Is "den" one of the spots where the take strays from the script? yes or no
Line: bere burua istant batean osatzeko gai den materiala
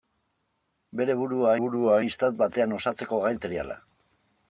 yes